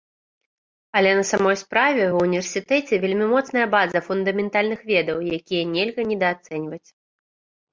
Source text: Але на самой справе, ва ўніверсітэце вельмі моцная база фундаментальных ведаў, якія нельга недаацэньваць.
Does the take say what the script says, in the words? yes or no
yes